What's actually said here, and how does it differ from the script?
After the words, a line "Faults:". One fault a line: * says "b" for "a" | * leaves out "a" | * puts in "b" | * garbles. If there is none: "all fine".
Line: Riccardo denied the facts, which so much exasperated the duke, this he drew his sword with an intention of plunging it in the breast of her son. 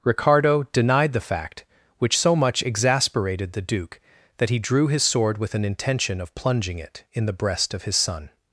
Riccardo denied the fact, which so much exasperated the duke, that he drew his sword with an intention of plunging it in the breast of his son.
Faults:
* says "fact" for "facts"
* says "that" for "this"
* says "his" for "her"